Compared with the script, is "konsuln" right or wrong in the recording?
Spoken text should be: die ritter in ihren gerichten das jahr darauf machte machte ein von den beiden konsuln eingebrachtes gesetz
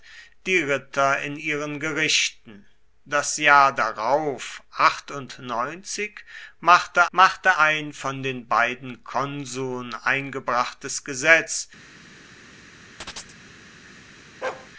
right